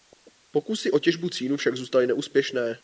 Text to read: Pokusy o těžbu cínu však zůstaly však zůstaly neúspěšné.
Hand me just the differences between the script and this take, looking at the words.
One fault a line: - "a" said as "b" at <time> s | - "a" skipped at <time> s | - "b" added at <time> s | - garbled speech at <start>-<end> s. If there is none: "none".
- "však zůstaly" skipped at 2.1 s